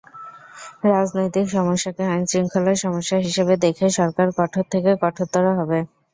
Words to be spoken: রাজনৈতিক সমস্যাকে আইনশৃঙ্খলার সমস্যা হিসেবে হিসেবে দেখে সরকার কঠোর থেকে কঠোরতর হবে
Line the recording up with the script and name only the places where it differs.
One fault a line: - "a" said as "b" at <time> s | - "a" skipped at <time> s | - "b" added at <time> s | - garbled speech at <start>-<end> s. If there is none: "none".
- "হিসেবে" skipped at 3.5 s